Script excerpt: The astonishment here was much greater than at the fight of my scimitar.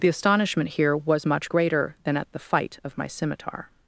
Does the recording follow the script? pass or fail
pass